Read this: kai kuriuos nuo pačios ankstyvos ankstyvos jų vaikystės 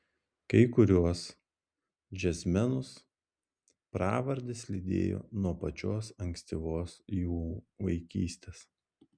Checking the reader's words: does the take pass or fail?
fail